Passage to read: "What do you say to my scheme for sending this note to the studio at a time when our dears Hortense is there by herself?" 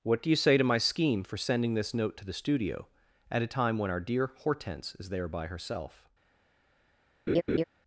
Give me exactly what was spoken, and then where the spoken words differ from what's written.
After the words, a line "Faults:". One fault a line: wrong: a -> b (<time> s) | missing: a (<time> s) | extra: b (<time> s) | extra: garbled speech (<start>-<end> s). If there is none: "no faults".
"What do you say to my scheme for sending this note to the studio at a time when our dear Hortense is there by herself?"
Faults:
wrong: dears -> dear (4.0 s)